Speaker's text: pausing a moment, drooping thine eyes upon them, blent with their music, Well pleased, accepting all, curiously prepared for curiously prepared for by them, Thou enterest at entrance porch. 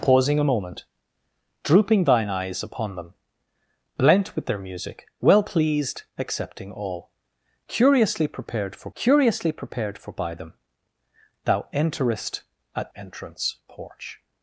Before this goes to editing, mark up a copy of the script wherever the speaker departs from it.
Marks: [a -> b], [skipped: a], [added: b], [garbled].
pausing a moment, drooping thine eyes upon them, blent with their music, Well pleased, accepting all, curiously prepared for curiously prepared for by them, Thou enterest at entrance porch.